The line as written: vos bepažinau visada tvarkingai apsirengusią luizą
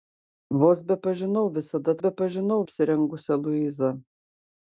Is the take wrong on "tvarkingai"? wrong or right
wrong